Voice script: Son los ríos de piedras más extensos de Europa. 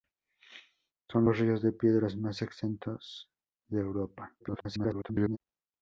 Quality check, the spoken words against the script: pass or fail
fail